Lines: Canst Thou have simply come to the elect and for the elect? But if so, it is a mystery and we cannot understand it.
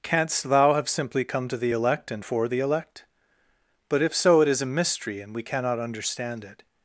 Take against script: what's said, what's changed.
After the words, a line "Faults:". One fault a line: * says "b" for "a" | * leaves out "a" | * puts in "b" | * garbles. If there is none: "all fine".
Canst Thou have simply come to the elect and for the elect? But if so, it is a mystery and we cannot understand it.
Faults:
all fine